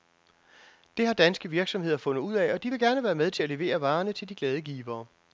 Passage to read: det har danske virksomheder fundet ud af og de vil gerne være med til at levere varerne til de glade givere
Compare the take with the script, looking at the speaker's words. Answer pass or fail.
pass